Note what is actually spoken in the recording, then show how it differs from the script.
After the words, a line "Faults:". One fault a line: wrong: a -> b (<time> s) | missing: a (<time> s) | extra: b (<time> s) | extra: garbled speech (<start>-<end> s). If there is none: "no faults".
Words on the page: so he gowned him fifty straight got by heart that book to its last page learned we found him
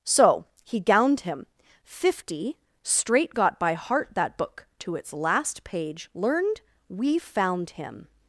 so he gowned him fifty straight got by heart that book to its last page learned we found him
Faults:
no faults